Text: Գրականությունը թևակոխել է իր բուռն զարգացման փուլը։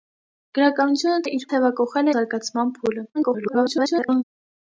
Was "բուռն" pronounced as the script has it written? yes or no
no